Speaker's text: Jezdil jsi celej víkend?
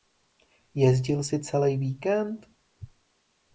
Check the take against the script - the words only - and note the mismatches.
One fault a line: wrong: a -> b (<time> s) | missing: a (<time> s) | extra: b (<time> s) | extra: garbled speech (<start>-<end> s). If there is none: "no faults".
no faults